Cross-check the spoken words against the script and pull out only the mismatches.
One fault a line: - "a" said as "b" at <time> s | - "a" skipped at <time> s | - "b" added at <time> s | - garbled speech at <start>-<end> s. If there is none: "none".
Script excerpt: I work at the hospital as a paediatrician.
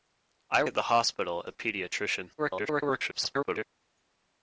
- "work" skipped at 0.6 s
- "as" skipped at 1.5 s
- garbled speech at 2.4-3.6 s